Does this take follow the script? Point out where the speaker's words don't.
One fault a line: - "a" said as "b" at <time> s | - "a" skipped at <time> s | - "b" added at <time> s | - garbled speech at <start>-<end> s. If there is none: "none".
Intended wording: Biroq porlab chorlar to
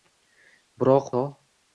- "porlab chorlar" skipped at 1.1 s